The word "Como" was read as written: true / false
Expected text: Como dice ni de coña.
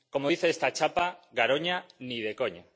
true